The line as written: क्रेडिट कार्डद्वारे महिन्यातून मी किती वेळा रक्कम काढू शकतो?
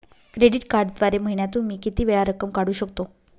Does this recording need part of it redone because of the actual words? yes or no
no